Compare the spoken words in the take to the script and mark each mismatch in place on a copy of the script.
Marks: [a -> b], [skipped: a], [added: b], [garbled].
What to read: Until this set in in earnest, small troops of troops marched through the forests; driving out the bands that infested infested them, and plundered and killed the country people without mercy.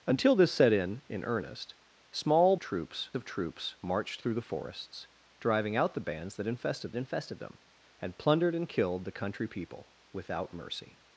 Until this set in in earnest, small troops of troops marched through the forests; driving out the bands that infested infested them, and plundered and killed the country people without mercy.